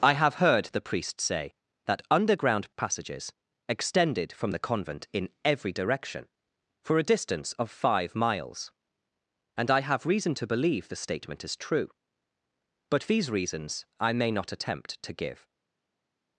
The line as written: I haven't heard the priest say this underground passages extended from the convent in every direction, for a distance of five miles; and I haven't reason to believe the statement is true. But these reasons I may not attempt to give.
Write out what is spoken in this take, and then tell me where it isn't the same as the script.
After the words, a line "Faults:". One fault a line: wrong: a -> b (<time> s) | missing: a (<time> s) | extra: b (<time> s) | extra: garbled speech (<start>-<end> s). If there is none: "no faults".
I have heard the priest say that underground passages extended from the convent in every direction, for a distance of five miles; and I have reason to believe the statement is true. But these reasons I may not attempt to give.
Faults:
wrong: haven't -> have (0.1 s)
wrong: this -> that (1.8 s)
wrong: haven't -> have (9.8 s)